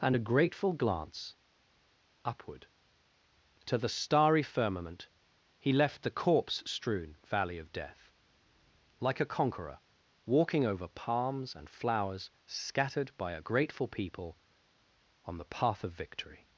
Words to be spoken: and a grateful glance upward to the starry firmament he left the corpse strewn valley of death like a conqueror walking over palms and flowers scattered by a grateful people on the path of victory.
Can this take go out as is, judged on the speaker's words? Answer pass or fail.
pass